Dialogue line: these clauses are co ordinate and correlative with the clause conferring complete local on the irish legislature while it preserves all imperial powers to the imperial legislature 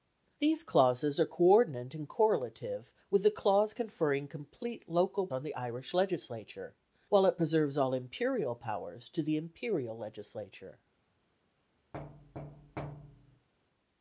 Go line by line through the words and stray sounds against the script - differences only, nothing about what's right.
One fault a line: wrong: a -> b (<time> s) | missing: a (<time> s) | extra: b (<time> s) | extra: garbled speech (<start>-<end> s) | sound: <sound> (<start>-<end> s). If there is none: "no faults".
sound: thud (11.9-13.5 s)